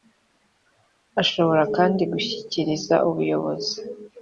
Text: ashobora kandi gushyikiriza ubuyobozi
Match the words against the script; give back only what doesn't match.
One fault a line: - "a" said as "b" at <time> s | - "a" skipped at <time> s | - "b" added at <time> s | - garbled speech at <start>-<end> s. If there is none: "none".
none